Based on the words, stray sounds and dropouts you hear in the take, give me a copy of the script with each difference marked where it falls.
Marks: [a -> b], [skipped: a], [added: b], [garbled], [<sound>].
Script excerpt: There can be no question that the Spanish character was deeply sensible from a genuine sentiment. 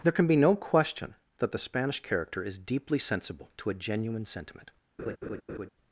There can be no question that the Spanish character [was -> is] deeply sensible [from -> to] a genuine sentiment. [laugh]